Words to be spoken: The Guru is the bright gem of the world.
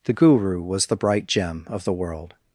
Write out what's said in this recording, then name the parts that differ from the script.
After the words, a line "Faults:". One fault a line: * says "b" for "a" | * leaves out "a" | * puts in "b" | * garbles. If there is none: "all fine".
The Guru was the bright gem of the world.
Faults:
* says "was" for "is"